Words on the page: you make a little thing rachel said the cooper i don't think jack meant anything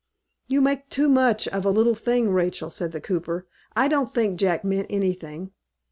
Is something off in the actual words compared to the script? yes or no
yes